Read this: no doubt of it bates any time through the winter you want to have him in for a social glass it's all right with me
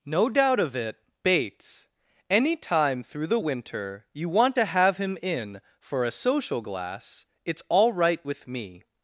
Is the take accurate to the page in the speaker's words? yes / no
yes